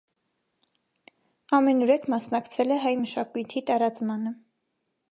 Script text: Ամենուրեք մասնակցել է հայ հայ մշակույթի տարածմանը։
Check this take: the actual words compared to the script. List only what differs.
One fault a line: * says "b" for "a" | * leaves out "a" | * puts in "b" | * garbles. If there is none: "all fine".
* leaves out "հայ"